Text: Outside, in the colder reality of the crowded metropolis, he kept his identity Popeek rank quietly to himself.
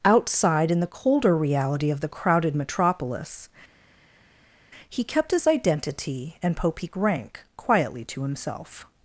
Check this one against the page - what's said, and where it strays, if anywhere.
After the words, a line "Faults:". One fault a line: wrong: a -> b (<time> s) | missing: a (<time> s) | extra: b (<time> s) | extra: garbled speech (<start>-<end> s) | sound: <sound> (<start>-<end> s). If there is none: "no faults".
Outside, in the colder reality of the crowded metropolis, he kept his identity and Popeek rank quietly to himself.
Faults:
extra: and (6.4 s)